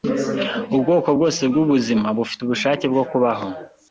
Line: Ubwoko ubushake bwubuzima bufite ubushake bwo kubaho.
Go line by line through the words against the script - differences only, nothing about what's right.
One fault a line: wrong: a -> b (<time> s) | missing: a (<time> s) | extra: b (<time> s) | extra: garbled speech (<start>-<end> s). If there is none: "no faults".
wrong: ubushake -> bwose (1.2 s)